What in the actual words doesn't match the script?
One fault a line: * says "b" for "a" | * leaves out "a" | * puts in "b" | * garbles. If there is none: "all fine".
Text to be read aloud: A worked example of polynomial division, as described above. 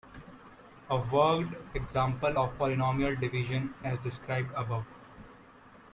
all fine